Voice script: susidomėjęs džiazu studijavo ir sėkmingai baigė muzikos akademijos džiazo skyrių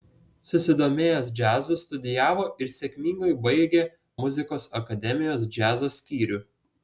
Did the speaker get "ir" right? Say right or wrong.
right